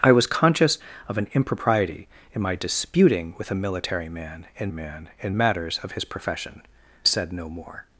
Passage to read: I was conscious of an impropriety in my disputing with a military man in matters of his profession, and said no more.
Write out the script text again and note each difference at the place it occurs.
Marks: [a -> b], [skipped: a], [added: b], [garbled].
I was conscious of an impropriety in my disputing with a military man in [added: man in] matters of his profession, [skipped: and] said no more.